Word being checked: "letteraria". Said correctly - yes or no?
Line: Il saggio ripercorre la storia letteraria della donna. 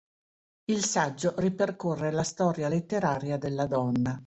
yes